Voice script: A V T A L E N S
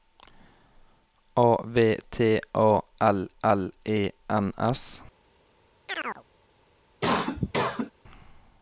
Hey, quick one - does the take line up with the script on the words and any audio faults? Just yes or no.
no